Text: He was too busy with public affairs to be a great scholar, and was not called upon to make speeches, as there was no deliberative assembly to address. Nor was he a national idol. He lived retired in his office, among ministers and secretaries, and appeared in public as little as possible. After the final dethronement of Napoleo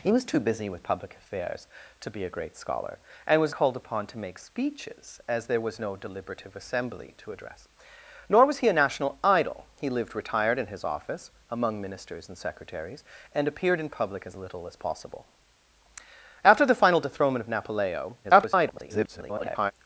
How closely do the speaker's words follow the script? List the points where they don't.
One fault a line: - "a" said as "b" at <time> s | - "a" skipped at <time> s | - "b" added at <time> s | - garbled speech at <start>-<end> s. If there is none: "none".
- "not" skipped at 3.5 s
- garbled speech at 18.2-19.7 s